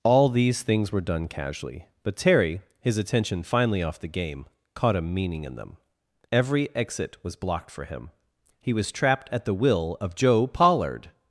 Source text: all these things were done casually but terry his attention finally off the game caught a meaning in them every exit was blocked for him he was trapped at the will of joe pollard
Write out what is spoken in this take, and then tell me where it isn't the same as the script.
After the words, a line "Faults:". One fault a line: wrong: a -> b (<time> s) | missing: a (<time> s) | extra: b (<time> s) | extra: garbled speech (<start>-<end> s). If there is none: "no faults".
all these things were done casually but terry his attention finally off the game caught a meaning in them every exit was blocked for him he was trapped at the will of joe pollard
Faults:
no faults